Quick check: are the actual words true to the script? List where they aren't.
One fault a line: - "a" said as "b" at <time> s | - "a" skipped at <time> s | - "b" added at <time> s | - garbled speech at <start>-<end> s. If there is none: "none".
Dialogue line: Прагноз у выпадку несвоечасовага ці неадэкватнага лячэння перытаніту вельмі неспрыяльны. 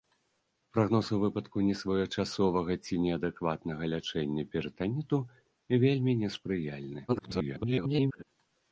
- garbled speech at 7.1-8.2 s